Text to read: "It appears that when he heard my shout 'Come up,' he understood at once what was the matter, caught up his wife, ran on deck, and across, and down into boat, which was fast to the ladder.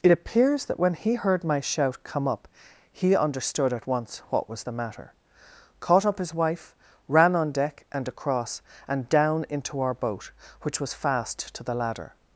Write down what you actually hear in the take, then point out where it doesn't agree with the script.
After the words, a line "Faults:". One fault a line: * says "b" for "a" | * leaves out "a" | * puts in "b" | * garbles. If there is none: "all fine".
"It appears that when he heard my shout 'Come up,' he understood at once what was the matter, caught up his wife, ran on deck, and across, and down into our boat, which was fast to the ladder.
Faults:
* puts in "our"